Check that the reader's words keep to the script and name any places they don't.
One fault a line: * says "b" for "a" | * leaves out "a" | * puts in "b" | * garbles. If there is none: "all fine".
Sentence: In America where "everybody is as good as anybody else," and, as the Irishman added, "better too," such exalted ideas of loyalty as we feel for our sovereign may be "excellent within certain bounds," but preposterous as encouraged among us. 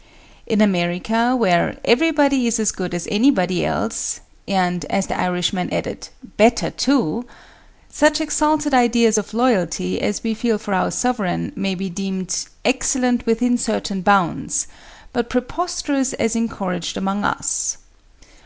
* puts in "deemed"